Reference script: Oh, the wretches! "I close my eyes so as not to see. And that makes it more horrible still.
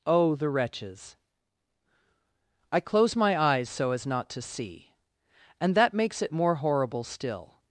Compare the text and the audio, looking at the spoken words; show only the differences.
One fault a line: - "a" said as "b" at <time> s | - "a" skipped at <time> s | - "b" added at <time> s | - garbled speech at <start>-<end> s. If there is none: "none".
none